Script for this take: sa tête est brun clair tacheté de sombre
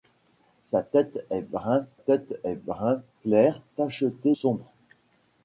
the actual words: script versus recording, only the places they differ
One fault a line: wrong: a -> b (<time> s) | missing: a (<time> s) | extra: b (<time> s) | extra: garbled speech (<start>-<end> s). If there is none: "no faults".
extra: tête est brun (1.9 s)
missing: de (4.3 s)